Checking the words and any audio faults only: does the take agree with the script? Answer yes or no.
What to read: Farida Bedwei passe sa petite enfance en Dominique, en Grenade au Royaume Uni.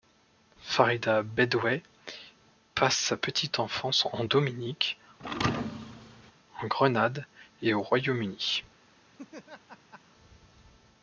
no